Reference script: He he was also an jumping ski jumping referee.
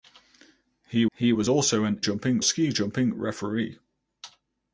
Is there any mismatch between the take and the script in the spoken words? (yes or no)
no